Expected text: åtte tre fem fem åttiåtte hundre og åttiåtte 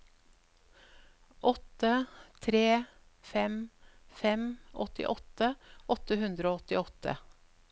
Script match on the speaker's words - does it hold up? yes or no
no